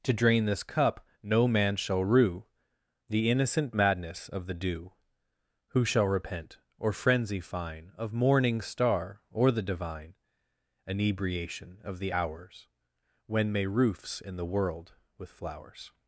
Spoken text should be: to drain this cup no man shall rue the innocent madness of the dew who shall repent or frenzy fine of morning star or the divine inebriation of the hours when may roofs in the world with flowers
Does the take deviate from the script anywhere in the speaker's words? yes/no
no